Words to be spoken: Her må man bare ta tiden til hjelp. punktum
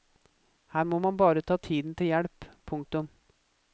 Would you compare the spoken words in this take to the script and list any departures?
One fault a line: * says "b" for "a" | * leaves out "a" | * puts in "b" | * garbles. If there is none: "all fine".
all fine